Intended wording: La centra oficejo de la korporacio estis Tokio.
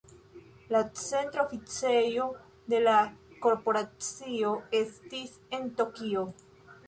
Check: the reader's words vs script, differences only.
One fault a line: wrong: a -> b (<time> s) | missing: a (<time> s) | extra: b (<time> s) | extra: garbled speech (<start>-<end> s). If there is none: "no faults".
extra: en (5.6 s)